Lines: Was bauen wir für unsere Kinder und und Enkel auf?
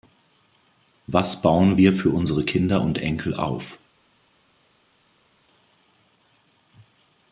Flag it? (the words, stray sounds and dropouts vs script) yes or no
yes